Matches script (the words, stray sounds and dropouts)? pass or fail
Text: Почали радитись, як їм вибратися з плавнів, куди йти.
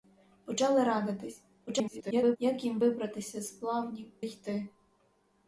fail